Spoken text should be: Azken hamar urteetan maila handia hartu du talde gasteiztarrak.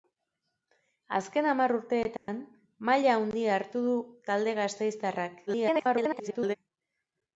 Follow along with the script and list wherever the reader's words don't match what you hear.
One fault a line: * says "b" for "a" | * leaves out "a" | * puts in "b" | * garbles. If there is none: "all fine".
* garbles